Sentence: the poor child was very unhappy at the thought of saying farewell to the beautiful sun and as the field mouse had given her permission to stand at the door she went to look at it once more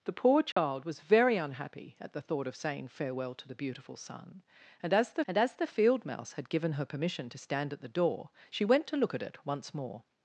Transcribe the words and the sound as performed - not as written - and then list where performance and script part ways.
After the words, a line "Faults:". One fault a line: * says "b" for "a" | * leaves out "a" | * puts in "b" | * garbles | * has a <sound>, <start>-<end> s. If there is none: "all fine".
the poor child was very unhappy at the thought of saying farewell to the beautiful sun and as the and as the field mouse had given her permission to stand at the door she went to look at it once more
Faults:
* has a dropout, 0.5-0.6 s
* puts in "and as the"